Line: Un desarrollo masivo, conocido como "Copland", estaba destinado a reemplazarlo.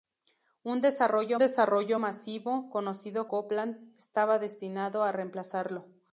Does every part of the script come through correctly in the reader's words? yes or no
no